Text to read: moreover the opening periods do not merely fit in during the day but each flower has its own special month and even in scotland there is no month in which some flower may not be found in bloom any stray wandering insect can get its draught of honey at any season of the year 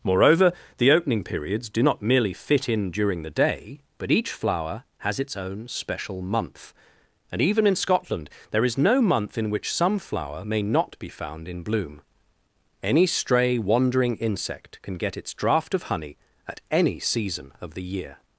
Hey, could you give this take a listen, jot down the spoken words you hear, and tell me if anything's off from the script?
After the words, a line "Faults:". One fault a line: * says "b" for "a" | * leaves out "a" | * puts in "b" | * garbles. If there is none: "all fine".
moreover the opening periods do not merely fit in during the day but each flower has its own special month and even in scotland there is no month in which some flower may not be found in bloom any stray wandering insect can get its draught of honey at any season of the year
Faults:
all fine